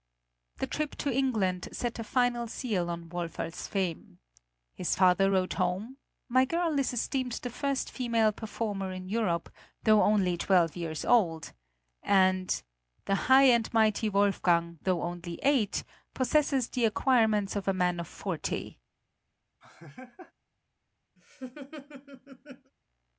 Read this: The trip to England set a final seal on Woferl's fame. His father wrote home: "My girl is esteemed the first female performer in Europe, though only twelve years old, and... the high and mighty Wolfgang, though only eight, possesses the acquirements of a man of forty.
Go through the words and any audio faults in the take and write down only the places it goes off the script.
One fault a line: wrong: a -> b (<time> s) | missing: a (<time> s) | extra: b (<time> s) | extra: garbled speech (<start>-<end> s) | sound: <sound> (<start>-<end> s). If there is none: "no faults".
sound: laugh (19.6-20.3 s)
sound: laugh (21.2-22.7 s)